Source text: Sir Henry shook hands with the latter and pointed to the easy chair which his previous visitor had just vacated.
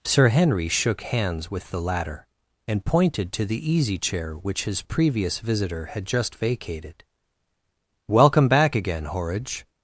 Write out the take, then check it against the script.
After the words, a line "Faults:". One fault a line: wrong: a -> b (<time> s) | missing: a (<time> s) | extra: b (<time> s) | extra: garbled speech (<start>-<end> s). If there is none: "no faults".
Sir Henry shook hands with the latter and pointed to the easy chair which his previous visitor had just vacated. "Welcome back again, Horridge
Faults:
extra: Welcome back again Horridge (8.1 s)